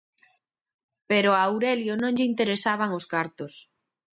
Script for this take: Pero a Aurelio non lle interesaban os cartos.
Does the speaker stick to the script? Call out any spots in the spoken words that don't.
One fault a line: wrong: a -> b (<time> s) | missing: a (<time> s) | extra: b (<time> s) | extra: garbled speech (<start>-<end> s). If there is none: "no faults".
no faults